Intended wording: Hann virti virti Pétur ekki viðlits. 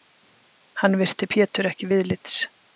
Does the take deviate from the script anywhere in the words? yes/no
yes